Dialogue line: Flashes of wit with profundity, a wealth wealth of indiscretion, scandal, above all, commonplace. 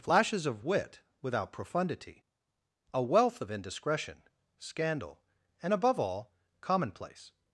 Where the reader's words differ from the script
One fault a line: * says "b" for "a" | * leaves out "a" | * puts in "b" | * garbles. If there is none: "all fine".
* says "without" for "with"
* leaves out "wealth"
* puts in "and"